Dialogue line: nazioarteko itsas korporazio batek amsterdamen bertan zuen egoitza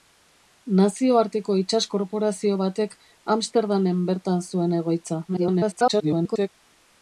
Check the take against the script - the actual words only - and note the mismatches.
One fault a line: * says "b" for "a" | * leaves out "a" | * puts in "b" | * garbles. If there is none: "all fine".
* garbles